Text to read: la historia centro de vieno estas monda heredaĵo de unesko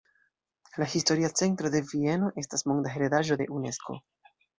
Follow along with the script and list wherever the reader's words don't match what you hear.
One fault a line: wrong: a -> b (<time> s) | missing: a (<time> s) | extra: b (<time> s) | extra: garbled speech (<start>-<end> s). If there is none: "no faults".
no faults